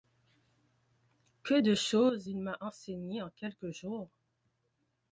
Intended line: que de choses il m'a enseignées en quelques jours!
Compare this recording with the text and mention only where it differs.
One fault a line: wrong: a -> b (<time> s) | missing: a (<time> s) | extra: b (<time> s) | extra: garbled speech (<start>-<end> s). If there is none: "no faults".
no faults